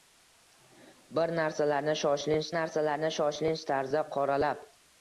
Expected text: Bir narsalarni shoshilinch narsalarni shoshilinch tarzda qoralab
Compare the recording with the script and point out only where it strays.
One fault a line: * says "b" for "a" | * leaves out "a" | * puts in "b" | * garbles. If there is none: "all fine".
all fine